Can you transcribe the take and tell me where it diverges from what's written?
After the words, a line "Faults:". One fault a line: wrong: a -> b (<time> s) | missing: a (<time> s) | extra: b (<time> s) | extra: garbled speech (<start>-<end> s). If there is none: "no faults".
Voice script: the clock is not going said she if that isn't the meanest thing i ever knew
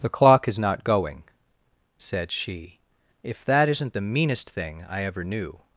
the clock is not going said she if that isn't the meanest thing i ever knew
Faults:
no faults